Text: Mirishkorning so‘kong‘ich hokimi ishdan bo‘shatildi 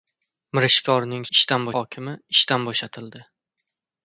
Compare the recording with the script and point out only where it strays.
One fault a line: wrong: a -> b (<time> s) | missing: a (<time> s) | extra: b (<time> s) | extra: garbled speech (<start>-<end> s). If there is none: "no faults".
wrong: so‘kong‘ich -> ishdan (1.4 s)